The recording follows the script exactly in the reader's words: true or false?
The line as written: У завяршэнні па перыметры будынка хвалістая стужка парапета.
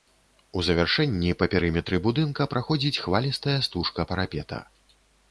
false